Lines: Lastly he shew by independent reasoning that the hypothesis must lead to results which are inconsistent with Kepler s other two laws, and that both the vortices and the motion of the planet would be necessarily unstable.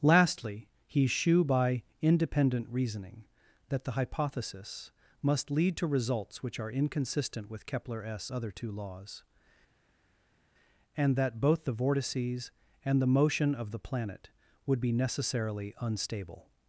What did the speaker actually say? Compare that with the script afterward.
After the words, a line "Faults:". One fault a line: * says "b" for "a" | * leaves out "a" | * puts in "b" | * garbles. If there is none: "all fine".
Lastly he shew by independent reasoning that the hypothesis must lead to results which are inconsistent with Kepler s other two laws, and that both the vortices and the motion of the planet would be necessarily unstable.
Faults:
all fine